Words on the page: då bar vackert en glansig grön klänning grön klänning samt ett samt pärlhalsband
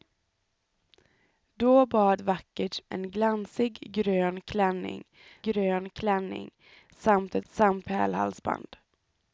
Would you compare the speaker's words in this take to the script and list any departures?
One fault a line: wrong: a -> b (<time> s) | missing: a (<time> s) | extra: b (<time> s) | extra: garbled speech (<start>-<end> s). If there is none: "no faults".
no faults